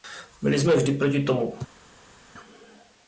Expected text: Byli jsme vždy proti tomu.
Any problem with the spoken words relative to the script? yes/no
no